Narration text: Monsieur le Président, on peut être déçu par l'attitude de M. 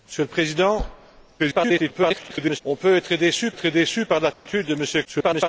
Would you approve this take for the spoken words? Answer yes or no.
no